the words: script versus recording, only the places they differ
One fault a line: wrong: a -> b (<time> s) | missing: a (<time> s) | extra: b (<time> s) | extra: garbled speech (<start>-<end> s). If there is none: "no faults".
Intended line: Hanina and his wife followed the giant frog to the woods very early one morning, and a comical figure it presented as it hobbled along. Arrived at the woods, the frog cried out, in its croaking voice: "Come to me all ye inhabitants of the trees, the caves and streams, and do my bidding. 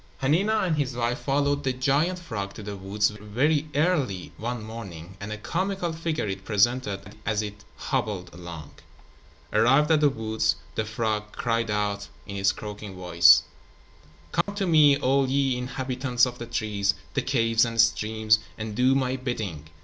no faults